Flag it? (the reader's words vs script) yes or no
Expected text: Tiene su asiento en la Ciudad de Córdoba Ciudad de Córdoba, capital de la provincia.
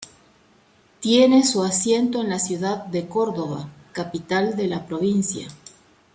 yes